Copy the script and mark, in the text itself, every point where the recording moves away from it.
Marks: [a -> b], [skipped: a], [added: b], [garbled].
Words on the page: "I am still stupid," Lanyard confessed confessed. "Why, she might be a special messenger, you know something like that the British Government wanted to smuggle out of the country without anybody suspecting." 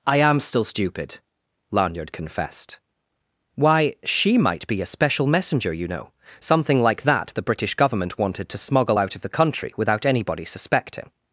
"I am still stupid," Lanyard confessed [skipped: confessed.] "Why, she might be a special messenger, you know something like that the British Government wanted to smuggle out of the country without anybody suspecting."